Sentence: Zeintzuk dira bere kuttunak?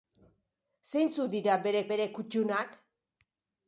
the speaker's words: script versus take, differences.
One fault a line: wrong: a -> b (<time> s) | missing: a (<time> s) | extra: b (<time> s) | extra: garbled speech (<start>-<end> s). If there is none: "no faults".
extra: bere (1.9 s)